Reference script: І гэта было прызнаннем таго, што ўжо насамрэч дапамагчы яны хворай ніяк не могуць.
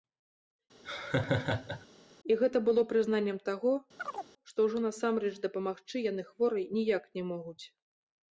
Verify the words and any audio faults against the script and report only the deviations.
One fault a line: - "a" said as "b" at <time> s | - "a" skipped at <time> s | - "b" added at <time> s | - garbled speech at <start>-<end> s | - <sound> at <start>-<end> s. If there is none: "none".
- laugh at 0.8-1.9 s
- chirp at 4.0-4.3 s